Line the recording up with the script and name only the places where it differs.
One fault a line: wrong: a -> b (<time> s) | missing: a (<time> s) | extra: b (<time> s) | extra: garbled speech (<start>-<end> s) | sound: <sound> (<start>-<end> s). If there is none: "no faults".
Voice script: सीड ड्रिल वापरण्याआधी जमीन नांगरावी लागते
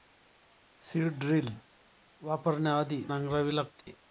missing: जमीन (3.0 s)
sound: dropout (3.8-3.9 s)